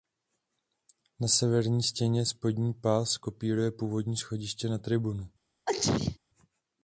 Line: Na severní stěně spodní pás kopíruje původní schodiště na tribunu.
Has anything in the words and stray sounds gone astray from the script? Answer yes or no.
yes